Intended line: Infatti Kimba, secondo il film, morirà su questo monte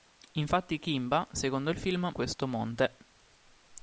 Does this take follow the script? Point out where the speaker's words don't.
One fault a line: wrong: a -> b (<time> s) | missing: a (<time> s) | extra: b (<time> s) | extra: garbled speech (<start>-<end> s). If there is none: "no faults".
missing: morirà su (2.1 s)